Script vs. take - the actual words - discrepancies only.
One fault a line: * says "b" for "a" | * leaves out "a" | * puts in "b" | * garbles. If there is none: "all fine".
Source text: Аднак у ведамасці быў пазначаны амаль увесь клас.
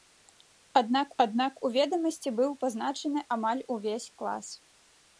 * puts in "аднак"